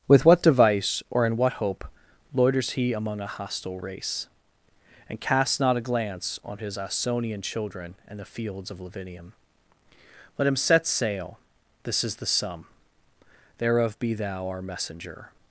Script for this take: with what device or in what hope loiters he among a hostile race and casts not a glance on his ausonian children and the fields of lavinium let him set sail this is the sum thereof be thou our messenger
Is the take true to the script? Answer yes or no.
yes